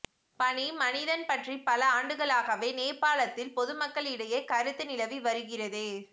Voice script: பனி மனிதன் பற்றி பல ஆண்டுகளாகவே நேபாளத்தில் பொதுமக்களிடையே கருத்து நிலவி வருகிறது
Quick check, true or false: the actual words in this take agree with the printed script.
true